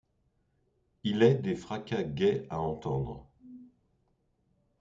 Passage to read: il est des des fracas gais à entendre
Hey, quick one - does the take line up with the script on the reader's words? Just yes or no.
no